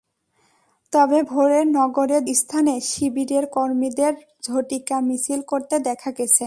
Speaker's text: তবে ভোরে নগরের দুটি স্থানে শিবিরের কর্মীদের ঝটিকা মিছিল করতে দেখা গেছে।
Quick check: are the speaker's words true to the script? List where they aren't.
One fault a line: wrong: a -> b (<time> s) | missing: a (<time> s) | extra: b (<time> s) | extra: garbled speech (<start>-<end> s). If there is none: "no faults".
missing: দুটি (2.2 s)